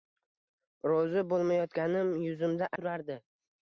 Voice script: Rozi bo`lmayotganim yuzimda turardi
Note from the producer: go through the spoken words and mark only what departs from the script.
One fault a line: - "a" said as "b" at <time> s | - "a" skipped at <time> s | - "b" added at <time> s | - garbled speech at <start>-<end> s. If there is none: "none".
none